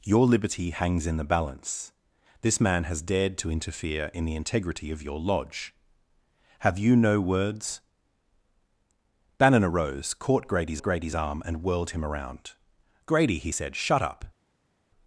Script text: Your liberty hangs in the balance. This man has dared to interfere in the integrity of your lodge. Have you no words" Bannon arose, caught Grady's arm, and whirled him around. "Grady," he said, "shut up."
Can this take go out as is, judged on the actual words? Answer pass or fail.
fail